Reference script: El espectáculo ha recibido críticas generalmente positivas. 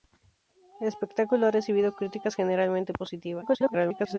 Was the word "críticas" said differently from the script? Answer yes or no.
no